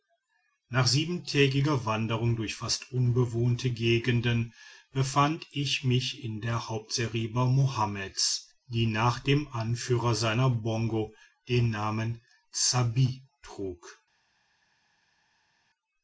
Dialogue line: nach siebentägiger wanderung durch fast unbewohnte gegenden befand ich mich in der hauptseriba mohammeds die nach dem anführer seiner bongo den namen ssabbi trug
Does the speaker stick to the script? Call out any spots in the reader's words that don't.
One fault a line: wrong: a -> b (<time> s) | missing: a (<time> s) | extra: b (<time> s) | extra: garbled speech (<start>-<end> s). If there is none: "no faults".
no faults